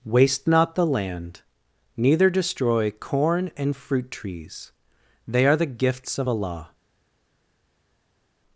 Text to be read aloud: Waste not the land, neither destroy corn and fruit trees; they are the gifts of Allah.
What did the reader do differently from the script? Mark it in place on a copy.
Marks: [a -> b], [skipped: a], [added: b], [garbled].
Waste not the land, neither destroy corn and fruit trees; they are the gifts of Allah.